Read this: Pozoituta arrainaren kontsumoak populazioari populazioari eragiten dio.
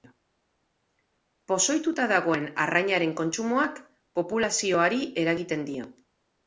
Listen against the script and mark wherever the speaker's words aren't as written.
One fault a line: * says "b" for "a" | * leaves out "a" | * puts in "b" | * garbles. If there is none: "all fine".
* puts in "dagoen"
* leaves out "populazioari"